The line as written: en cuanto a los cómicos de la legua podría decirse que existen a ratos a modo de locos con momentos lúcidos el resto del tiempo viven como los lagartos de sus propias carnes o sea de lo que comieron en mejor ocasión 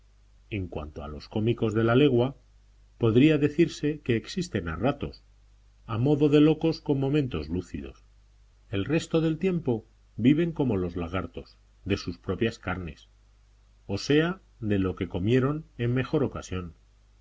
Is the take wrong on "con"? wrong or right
right